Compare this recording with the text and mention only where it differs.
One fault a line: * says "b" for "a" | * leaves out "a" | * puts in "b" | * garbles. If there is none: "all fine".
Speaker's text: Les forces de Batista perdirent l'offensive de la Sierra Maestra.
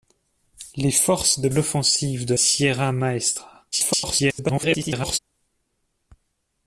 * leaves out "Batista perdirent"
* leaves out "la"
* garbles